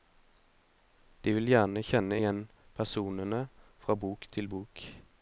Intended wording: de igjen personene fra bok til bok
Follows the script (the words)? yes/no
no